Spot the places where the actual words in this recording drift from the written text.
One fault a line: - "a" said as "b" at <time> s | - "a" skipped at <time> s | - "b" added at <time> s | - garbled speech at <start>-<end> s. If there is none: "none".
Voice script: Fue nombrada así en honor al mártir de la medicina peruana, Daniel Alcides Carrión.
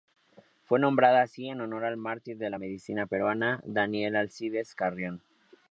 none